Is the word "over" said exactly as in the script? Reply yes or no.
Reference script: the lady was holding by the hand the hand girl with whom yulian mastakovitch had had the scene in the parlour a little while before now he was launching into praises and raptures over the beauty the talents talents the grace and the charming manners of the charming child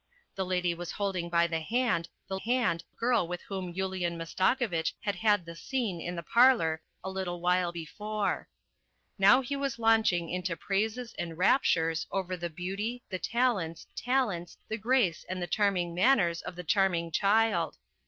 yes